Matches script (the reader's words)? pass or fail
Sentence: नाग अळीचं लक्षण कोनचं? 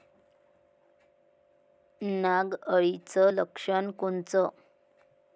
pass